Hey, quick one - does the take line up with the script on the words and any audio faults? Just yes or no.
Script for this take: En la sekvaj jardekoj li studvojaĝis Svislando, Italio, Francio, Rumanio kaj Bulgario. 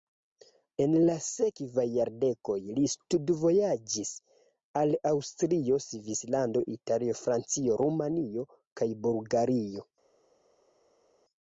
no